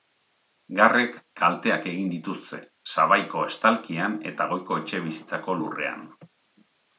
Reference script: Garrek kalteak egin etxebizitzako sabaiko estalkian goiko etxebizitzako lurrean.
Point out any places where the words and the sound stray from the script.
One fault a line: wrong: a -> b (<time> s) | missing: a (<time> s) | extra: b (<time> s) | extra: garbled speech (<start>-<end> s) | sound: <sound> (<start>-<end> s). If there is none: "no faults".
wrong: etxebizitzako -> dituzte (2.1 s)
extra: eta (4.3 s)